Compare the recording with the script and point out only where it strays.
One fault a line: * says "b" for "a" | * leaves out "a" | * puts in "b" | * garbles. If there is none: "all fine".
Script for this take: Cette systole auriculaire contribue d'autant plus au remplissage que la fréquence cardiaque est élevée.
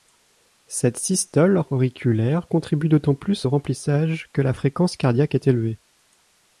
all fine